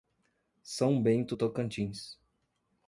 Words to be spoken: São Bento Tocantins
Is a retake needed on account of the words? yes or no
no